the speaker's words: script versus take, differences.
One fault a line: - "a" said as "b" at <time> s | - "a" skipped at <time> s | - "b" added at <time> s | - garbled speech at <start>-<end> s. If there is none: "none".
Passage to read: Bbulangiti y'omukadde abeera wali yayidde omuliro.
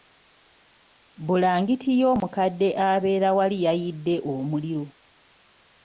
none